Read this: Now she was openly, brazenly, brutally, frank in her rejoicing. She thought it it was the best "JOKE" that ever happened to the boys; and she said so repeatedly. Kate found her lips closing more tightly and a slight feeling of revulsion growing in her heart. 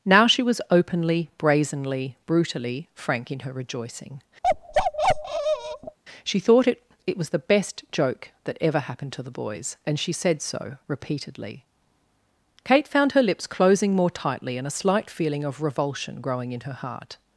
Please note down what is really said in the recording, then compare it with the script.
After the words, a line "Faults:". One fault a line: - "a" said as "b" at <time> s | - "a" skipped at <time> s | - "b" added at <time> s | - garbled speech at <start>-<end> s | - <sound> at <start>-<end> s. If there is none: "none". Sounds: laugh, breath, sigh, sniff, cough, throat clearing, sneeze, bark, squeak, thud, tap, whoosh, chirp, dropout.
Now she was openly, brazenly, brutally, frank in her rejoicing. She thought it it was the best "JOKE" that ever happened to the boys; and she said so repeatedly. Kate found her lips closing more tightly and a slight feeling of revulsion growing in her heart.
Faults:
- bark at 4.4-6.0 s